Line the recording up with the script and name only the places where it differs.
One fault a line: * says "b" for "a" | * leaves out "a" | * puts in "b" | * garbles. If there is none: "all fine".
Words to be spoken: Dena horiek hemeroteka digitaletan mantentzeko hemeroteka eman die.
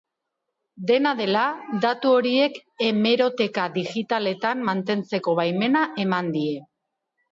* puts in "dela datu"
* says "baimena" for "hemeroteka"